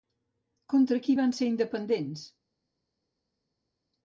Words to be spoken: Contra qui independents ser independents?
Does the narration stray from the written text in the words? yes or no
yes